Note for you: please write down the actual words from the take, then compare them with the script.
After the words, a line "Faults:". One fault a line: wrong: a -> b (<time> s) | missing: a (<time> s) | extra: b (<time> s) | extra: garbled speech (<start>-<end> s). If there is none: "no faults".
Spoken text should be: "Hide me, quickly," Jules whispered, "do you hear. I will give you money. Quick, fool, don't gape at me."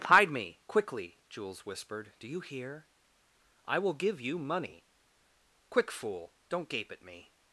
"Hide me, quickly," Jules whispered, "do you hear. I will give you money. Quick, fool, don't gape at me."
Faults:
no faults